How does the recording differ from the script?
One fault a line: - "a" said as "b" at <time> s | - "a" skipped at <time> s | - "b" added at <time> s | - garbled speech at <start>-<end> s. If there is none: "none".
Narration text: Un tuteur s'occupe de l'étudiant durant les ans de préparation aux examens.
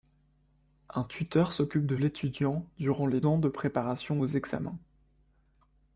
none